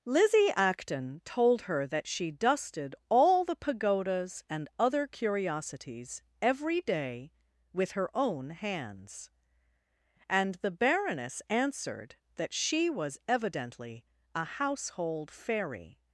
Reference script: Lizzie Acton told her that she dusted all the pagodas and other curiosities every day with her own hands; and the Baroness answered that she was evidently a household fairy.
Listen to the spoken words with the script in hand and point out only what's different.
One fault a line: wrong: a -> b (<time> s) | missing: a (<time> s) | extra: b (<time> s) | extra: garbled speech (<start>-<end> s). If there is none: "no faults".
no faults